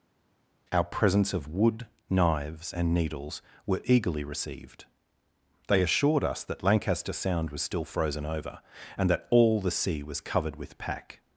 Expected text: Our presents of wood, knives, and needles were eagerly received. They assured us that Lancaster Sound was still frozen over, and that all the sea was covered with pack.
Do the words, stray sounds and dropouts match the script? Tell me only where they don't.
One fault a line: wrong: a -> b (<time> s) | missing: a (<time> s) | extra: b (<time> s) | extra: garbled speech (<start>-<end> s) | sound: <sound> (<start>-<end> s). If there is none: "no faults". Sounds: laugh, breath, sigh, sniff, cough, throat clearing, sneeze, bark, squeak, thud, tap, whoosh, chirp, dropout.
no faults